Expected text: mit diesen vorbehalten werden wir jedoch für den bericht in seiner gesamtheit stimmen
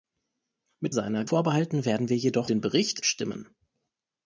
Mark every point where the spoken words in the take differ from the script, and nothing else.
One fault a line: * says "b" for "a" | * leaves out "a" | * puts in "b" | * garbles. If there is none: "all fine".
* says "seiner" for "diesen"
* leaves out "für"
* leaves out "in seiner gesamtheit"